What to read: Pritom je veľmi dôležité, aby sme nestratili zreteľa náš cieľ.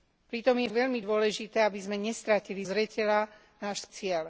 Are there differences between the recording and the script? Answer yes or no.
no